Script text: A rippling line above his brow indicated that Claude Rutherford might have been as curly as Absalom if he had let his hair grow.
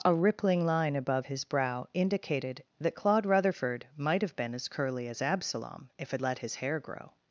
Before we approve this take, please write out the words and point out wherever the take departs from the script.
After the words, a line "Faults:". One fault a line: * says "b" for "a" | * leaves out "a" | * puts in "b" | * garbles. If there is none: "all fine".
A rippling line above his brow indicated that Claude Rutherford might have been as curly as Absalom if had let his hair grow.
Faults:
* leaves out "he"